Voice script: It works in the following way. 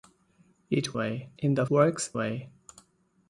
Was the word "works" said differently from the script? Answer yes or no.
yes